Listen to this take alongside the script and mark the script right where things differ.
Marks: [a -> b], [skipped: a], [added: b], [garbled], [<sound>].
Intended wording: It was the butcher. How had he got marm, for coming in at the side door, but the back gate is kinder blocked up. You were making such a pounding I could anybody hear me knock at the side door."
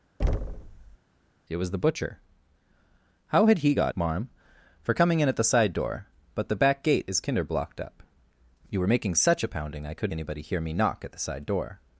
[thud] It was the butcher. How had he got marm, for coming in at the side door, but the back gate is kinder blocked up. You were making such a pounding I could anybody hear me knock at the side door."